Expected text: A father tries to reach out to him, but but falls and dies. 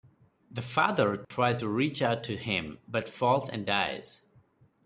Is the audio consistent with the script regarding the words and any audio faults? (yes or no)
no